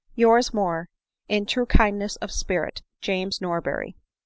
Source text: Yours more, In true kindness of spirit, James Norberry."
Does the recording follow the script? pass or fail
pass